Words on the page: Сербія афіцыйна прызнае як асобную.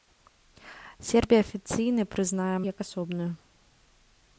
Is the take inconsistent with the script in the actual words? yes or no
no